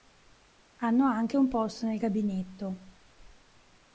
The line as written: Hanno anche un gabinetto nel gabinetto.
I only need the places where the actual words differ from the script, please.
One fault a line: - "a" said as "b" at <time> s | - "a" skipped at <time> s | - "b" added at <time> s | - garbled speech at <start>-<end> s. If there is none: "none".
- "gabinetto" said as "posto" at 1.5 s